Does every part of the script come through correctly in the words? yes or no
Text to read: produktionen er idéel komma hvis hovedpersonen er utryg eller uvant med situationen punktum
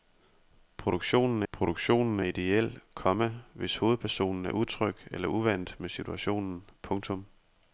no